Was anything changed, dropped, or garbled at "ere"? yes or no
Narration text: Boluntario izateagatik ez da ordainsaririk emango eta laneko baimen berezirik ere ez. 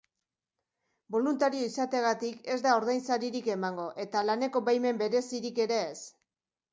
no